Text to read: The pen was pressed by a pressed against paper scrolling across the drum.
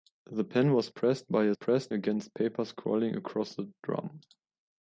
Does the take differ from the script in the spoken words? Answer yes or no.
no